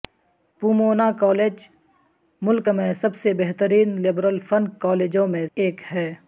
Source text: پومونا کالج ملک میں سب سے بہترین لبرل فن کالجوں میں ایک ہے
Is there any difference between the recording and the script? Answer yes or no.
no